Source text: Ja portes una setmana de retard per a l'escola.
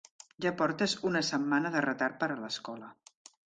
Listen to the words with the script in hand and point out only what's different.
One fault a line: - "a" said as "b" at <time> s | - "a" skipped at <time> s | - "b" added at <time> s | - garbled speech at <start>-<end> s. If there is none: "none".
none